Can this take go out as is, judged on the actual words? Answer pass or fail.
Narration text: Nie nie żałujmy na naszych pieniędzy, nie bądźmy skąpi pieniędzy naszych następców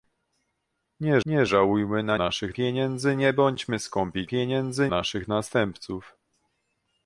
pass